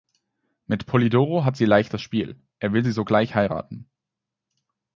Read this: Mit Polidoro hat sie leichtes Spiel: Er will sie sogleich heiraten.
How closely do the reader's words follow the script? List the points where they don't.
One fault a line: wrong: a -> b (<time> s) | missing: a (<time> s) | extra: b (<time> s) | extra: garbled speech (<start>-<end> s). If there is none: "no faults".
no faults